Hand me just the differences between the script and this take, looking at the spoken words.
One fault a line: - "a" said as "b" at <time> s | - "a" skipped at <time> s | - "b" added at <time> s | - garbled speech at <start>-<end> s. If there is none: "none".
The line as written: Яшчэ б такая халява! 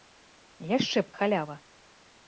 - "такая" skipped at 1.1 s